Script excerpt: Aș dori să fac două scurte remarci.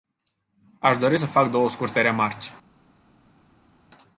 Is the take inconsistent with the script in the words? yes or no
no